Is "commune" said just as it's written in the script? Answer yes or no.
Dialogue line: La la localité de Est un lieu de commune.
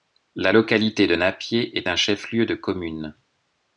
yes